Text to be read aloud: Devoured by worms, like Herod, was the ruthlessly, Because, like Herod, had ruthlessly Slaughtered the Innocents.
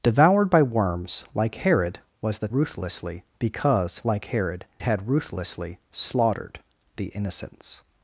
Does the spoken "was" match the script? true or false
true